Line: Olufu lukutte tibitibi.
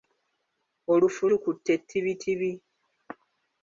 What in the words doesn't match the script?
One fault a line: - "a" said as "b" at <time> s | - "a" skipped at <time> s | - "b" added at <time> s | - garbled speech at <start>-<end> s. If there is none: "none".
none